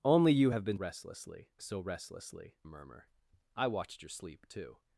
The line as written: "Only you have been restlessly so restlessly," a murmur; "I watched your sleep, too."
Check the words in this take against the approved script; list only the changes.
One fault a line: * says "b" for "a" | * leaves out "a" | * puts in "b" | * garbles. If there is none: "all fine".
all fine